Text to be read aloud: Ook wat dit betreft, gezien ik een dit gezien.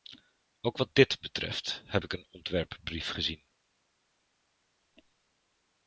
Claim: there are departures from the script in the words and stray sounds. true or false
true